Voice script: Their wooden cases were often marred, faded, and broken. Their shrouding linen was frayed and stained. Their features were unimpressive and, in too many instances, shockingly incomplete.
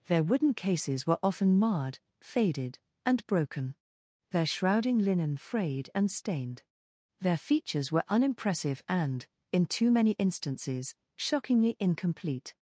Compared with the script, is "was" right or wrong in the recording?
wrong